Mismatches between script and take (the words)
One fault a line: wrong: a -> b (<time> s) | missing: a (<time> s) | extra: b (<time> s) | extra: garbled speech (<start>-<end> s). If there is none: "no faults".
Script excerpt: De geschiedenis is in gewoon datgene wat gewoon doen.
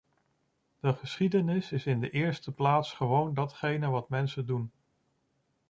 extra: de eerste plaats (2.0 s)
wrong: gewoon -> mensen (4.1 s)